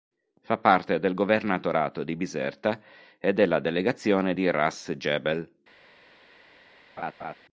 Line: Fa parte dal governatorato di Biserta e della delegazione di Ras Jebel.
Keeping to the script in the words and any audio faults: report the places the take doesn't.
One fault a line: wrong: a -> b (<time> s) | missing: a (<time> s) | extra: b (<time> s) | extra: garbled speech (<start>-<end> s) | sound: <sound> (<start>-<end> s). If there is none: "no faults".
wrong: dal -> del (1.0 s)
sound: laugh (7.0-7.3 s)